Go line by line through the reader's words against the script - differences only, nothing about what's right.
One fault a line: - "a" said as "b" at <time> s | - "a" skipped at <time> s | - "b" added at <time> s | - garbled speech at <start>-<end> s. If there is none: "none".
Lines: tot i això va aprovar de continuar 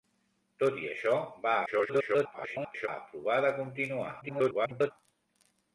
- garbled speech at 1.7-2.9 s
- garbled speech at 4.2-4.9 s